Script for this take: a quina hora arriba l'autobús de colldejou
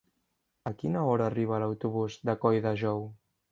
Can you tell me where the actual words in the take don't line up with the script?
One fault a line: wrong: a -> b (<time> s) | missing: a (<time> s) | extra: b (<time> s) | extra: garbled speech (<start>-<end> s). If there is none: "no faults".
no faults